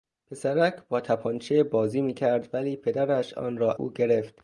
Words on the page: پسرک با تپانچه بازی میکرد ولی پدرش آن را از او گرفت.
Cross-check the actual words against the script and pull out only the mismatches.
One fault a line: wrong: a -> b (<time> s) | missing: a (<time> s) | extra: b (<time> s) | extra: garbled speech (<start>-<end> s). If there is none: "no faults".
missing: از (3.7 s)